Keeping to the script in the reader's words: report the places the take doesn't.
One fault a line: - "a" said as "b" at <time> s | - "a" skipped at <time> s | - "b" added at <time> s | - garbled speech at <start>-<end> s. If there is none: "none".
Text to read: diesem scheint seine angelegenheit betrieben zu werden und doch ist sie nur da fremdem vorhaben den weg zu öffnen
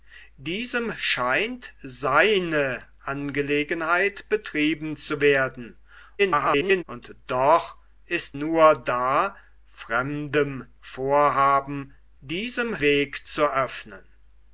- garbled speech at 6.2-6.8 s
- "sie" skipped at 8.4 s
- "den" said as "diesem" at 12.2 s